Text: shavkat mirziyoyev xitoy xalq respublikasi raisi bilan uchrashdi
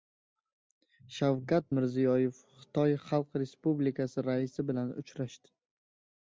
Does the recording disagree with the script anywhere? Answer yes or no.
no